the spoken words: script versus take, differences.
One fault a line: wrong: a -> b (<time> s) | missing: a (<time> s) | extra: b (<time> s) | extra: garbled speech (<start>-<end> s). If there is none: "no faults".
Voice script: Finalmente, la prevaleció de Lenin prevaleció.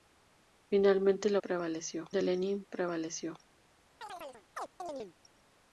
no faults